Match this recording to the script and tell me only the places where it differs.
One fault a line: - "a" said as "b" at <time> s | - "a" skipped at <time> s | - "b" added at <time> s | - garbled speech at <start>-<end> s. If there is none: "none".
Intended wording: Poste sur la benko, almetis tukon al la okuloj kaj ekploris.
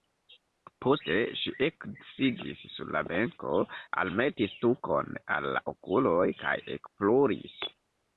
- "ŝi eksidis" added at 1.4 s